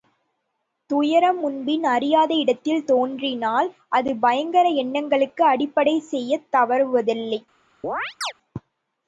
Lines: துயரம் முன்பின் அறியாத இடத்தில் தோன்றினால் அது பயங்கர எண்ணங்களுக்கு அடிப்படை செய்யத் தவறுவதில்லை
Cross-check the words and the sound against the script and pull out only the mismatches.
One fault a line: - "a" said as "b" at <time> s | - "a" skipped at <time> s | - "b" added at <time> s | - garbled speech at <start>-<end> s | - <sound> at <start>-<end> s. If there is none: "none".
- chirp at 7.8-8.3 s